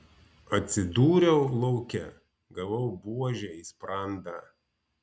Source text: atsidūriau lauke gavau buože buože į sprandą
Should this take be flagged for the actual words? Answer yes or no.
yes